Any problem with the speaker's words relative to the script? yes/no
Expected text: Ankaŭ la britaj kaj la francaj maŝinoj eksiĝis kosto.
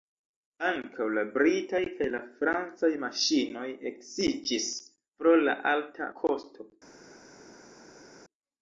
yes